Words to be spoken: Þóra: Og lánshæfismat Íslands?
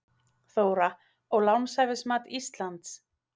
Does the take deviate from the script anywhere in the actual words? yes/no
no